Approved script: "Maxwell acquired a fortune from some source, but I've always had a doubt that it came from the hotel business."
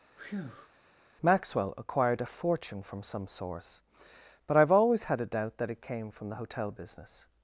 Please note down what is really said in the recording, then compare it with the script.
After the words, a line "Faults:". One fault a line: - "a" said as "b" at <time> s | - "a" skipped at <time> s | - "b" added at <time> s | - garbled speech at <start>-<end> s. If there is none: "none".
"Maxwell acquired a fortune from some source, but I've always had a doubt that it came from the hotel business."
Faults:
none